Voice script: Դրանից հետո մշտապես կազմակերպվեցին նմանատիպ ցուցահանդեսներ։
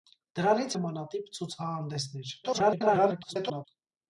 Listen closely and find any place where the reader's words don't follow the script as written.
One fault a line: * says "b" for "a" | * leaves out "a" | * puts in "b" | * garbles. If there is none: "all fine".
* leaves out "հետո մշտապես կազմակերպվեցին"
* garbles